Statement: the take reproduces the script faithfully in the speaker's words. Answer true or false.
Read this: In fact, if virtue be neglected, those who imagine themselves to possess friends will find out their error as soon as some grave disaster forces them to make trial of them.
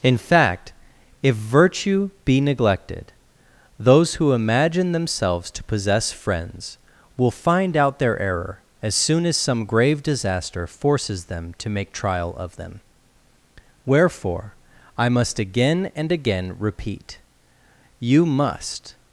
false